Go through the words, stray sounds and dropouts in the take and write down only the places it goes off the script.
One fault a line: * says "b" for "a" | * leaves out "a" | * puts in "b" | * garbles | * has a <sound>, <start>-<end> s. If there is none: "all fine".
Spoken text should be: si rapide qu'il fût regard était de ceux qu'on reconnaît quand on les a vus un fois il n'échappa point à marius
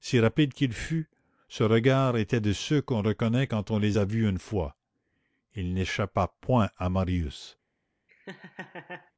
* puts in "ce"
* says "une" for "un"
* has a laugh, 8.1-9.1 s